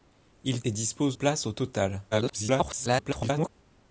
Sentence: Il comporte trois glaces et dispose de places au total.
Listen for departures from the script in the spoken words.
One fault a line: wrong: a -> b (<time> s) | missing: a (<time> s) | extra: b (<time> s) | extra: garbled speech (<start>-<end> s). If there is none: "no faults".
missing: comporte trois glaces (0.6 s)
missing: de (1.2 s)
extra: garbled speech (2.1-3.5 s)